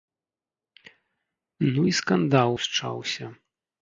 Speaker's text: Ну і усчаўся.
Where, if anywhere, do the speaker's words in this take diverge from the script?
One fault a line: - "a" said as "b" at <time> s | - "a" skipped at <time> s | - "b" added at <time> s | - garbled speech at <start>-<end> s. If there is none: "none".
- "скандал" added at 2.0 s